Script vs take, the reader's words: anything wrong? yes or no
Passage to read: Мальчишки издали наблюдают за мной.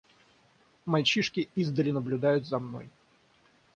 no